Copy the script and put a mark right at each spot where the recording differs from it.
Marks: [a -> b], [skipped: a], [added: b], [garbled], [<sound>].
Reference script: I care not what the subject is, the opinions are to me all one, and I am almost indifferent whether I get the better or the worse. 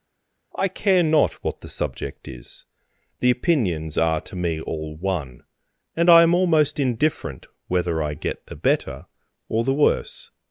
I care not what the subject is, the opinions are to me all one, and I am almost indifferent whether I get the better or the worse.